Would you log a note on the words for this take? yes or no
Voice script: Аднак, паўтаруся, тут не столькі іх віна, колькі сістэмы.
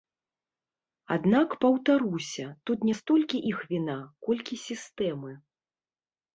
no